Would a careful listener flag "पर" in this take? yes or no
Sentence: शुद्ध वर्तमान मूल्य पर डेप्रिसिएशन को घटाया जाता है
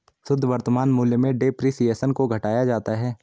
yes